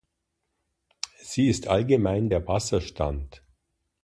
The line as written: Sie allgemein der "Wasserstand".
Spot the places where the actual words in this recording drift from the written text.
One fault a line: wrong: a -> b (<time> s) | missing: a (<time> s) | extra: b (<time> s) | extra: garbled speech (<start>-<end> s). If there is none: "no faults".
extra: ist (1.5 s)